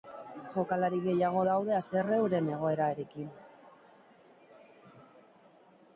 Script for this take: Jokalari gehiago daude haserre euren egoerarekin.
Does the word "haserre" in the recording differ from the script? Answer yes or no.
no